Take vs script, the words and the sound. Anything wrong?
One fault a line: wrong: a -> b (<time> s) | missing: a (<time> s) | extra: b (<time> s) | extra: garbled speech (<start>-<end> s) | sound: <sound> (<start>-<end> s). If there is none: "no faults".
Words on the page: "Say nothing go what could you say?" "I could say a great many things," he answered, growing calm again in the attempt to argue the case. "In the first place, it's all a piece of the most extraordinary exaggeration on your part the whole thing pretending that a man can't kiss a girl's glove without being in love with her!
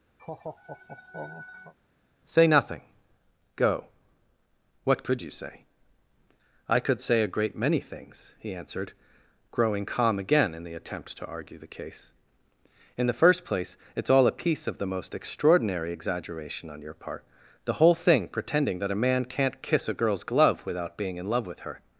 sound: laugh (0.2-1.7 s)